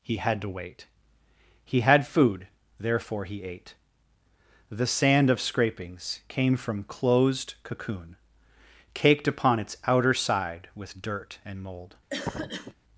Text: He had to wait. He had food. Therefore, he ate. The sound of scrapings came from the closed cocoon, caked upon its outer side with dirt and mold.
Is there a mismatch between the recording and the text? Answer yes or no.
yes